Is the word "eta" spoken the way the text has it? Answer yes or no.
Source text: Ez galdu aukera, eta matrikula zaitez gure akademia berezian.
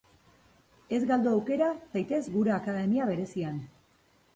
no